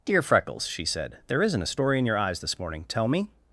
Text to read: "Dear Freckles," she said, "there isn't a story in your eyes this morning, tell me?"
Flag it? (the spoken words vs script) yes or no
no